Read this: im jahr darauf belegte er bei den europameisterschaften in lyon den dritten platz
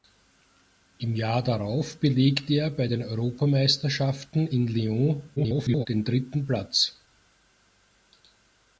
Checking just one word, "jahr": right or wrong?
right